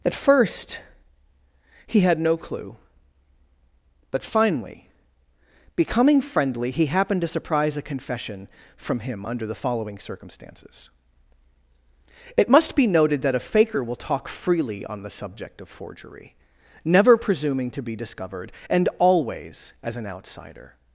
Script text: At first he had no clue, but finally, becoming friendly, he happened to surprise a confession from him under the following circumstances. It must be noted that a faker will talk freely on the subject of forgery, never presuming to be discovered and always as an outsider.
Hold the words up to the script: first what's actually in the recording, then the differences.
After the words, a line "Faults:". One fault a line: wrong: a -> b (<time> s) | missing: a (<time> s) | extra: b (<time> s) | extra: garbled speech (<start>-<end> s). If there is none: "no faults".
At first he had no clue, but finally, becoming friendly, he happened to surprise a confession from him under the following circumstances. It must be noted that a faker will talk freely on the subject of forgery, never presuming to be discovered and always as an outsider.
Faults:
no faults